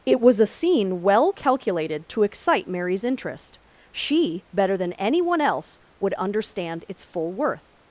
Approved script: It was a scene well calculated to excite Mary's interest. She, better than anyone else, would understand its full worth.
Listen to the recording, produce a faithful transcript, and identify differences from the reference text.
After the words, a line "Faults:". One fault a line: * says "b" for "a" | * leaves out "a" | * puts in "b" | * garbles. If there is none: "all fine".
It was a scene well calculated to excite Mary's interest. She, better than anyone else, would understand its full worth.
Faults:
all fine